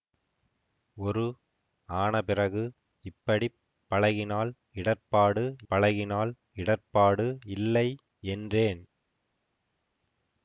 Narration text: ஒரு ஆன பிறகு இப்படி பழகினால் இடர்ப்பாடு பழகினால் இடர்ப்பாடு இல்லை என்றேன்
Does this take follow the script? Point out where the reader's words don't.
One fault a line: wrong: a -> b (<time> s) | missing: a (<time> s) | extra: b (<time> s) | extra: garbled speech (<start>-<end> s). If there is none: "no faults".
no faults